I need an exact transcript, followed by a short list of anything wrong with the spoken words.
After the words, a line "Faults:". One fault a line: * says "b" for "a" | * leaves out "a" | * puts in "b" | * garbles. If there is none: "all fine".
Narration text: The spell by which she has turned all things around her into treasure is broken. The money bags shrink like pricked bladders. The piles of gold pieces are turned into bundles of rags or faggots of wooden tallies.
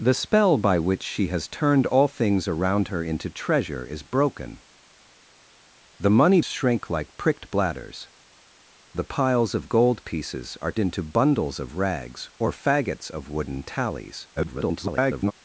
The spell by which she has turned all things around her into treasure is broken. The money shrink like pricked bladders. The piles of gold pieces are into bundles of rags or faggots of wooden tallies. [garbled]
Faults:
* leaves out "bags"
* leaves out "turned"
* garbles